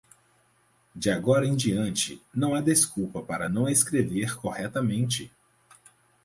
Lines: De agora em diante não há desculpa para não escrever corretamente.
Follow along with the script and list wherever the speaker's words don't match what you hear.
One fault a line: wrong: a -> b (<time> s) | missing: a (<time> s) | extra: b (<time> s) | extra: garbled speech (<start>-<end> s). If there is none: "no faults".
no faults